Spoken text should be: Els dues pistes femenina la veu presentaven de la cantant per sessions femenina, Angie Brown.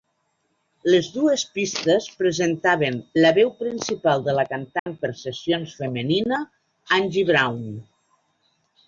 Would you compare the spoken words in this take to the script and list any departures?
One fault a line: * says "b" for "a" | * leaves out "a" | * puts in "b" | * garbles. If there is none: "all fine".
* says "Les" for "Els"
* says "presentaven" for "femenina"
* says "principal" for "presentaven"